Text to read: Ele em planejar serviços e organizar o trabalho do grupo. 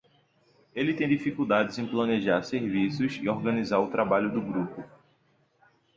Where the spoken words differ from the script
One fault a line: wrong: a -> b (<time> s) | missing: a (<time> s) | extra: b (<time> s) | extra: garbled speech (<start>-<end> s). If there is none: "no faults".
extra: tem dificuldades (0.9 s)